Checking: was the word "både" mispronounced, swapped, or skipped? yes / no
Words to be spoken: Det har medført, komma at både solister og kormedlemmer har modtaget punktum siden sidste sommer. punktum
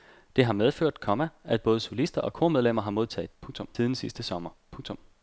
no